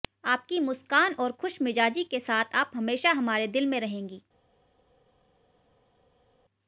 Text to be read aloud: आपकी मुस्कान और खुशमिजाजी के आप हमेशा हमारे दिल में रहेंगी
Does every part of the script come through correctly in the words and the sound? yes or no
no